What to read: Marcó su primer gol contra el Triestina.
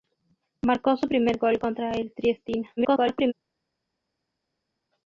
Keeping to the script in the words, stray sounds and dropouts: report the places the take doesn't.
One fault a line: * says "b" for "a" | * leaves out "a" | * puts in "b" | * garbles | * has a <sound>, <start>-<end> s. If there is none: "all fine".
* garbles